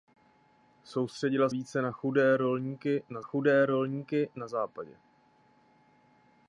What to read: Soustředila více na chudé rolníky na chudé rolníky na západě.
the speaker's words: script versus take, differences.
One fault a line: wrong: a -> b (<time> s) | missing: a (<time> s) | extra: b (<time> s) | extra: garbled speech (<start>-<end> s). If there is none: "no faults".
no faults